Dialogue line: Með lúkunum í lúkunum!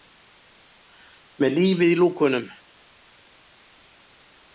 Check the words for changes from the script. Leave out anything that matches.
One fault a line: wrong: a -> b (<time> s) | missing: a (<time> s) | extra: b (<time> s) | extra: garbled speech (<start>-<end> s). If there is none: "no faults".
wrong: lúkunum -> lífið (1.6 s)